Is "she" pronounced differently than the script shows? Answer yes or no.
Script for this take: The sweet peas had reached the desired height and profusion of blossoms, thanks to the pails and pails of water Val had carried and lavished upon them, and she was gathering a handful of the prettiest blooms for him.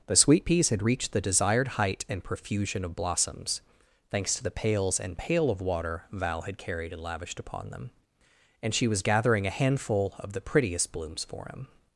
no